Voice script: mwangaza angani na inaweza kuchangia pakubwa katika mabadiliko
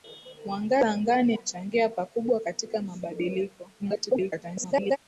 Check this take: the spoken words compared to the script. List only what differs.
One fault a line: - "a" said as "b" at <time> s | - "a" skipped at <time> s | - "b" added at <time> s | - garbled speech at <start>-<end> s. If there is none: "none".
- "na inaweza" skipped at 1.4 s
- garbled speech at 3.8-5.0 s